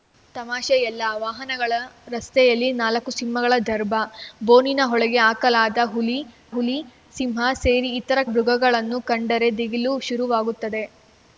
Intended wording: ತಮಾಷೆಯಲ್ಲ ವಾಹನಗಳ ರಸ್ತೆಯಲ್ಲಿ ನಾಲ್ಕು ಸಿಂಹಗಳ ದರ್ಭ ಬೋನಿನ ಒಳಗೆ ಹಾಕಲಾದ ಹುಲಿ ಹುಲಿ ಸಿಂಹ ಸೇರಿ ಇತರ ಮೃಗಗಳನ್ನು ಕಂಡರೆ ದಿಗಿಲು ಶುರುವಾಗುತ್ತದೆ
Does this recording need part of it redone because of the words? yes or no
no